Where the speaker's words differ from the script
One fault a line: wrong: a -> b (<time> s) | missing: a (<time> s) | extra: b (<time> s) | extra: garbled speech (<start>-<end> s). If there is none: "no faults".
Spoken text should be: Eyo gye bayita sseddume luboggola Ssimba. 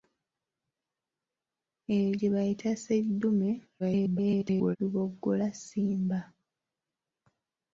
extra: garbled speech (3.8-4.8 s)